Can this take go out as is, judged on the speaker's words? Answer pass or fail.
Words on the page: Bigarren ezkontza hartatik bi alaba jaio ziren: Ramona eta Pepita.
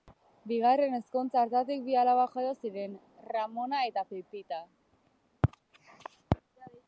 pass